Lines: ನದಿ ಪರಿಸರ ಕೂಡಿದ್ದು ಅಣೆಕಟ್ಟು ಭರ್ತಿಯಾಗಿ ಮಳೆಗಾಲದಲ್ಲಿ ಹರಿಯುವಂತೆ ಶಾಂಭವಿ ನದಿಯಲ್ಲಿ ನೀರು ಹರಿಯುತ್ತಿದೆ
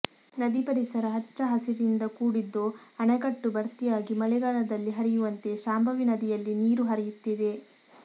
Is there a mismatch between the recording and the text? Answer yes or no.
yes